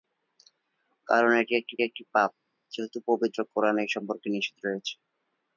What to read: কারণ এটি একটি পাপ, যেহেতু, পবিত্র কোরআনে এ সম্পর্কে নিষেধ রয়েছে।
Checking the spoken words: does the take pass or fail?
fail